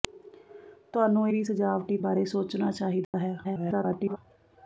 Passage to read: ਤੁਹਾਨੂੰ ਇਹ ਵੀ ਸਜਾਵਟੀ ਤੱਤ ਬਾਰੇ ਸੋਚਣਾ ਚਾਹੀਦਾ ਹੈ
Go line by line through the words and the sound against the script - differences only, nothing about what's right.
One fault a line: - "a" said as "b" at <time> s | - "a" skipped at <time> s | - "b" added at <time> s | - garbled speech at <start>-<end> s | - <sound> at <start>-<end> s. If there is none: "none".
- "ਇਹ" skipped at 1.3 s
- "ਤੱਤ" skipped at 2.0 s
- dropout at 3.0-3.1 s
- garbled speech at 3.4-4.2 s